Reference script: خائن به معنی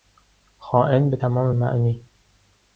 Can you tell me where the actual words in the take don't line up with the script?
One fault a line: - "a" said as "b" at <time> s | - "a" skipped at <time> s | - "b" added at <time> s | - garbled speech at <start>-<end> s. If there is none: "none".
- "تمام" added at 1.1 s